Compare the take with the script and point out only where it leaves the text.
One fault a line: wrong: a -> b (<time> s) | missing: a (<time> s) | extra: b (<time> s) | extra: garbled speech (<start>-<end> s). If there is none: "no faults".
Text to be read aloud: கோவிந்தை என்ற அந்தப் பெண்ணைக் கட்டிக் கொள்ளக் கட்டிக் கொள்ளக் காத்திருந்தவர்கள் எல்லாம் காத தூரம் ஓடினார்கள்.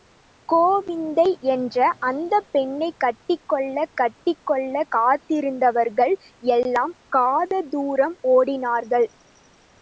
no faults